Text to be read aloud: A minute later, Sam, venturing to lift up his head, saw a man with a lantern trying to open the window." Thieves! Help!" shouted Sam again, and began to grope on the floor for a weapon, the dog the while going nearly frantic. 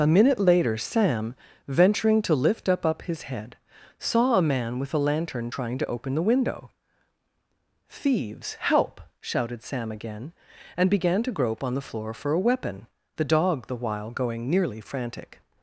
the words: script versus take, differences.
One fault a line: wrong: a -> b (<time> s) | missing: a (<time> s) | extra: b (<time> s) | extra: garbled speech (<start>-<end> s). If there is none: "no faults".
extra: up (2.9 s)